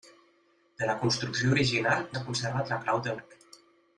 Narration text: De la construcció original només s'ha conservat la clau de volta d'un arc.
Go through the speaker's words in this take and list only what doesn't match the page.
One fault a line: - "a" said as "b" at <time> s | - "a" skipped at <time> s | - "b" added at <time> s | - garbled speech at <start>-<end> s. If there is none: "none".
- "només" skipped at 2.0 s
- "volta d'un" skipped at 3.2 s